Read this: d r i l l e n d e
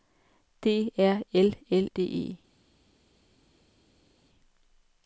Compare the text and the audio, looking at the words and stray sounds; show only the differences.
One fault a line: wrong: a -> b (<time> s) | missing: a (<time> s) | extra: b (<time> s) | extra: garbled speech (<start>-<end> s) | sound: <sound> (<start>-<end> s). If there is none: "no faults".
missing: i (1.2 s)
missing: e n (1.9 s)